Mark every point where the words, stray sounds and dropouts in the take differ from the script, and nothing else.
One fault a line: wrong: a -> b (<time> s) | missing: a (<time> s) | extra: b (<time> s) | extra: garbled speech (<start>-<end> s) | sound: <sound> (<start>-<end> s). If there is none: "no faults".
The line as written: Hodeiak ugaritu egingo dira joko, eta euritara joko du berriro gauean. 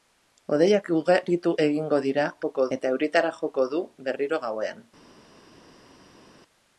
no faults